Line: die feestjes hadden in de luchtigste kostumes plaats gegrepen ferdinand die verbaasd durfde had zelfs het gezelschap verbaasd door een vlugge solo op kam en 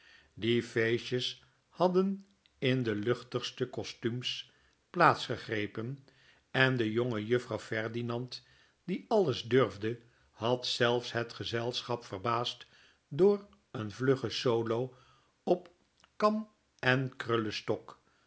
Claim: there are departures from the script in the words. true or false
true